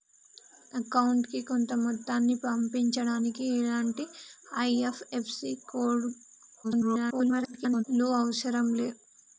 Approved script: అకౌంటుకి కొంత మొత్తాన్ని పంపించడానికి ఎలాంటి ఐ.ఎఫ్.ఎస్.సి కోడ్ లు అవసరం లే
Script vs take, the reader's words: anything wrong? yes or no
yes